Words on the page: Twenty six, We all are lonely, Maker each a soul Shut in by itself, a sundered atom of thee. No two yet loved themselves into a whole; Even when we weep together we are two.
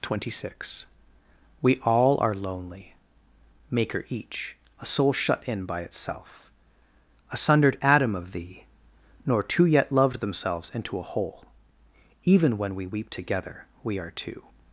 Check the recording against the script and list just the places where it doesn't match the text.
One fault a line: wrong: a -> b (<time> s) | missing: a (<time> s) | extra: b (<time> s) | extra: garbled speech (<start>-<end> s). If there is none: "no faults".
wrong: No -> Nor (9.2 s)